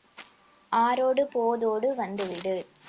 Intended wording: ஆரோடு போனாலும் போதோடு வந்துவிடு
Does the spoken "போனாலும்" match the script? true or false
false